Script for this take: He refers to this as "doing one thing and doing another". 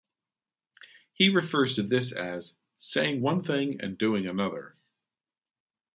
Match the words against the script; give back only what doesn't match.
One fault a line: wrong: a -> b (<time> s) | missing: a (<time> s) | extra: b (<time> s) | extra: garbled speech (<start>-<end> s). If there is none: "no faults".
wrong: doing -> saying (2.8 s)